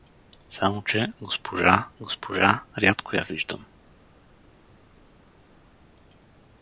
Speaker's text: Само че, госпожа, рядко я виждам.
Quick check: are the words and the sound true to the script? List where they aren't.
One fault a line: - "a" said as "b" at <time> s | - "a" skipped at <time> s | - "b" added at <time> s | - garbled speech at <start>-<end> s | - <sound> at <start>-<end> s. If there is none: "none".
- "госпожа" added at 2.0 s